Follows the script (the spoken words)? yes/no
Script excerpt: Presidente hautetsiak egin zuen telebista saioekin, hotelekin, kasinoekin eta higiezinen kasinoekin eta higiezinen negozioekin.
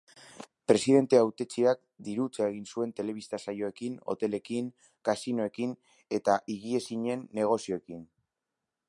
no